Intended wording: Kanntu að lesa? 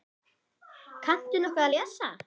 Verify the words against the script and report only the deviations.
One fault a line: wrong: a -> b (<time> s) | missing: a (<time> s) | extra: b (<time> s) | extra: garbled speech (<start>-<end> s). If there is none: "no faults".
extra: nokkuð (1.4 s)